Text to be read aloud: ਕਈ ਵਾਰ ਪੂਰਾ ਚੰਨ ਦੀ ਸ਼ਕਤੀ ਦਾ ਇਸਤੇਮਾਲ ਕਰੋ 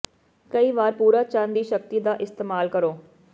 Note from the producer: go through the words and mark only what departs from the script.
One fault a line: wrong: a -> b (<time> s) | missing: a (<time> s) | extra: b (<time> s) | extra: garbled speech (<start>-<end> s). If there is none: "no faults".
no faults